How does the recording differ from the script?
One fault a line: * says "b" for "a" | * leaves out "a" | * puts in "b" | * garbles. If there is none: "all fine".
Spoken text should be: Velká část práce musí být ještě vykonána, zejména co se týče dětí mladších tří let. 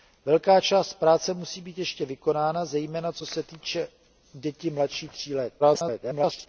* garbles